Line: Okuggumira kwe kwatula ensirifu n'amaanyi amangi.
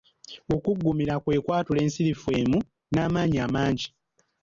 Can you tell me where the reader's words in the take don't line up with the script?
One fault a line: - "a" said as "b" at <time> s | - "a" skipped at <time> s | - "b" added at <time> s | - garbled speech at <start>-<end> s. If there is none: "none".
- "emu" added at 2.4 s